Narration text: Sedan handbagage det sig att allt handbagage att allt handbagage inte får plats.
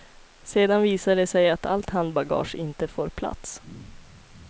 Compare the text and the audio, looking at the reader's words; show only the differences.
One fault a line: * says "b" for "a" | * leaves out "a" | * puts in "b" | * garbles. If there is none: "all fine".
* says "visar" for "handbagage"
* leaves out "att allt handbagage"